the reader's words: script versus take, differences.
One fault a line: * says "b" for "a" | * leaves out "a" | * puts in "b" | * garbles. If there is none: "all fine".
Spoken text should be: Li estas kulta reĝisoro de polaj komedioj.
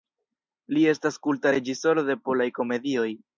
all fine